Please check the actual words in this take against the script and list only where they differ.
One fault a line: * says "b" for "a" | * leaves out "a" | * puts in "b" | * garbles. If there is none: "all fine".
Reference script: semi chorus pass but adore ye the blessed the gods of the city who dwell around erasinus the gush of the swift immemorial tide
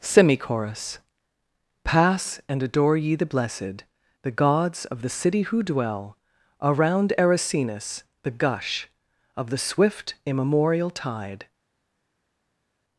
* says "and" for "but"